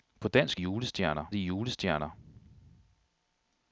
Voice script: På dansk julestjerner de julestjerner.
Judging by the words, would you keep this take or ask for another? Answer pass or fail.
pass